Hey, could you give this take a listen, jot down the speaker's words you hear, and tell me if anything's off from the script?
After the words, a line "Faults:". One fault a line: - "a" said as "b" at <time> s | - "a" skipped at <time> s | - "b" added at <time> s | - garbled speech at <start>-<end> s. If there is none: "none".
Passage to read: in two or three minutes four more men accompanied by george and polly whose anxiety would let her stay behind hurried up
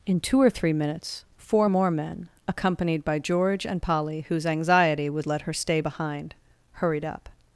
in two or three minutes four more men accompanied by george and polly whose anxiety would let her stay behind hurried up
Faults:
none